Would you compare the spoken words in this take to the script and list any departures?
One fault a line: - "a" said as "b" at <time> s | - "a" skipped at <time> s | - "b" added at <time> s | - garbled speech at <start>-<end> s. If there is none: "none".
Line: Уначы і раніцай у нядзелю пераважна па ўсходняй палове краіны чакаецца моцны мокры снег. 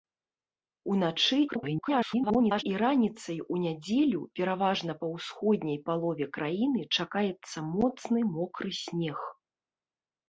- garbled speech at 1.5-2.6 s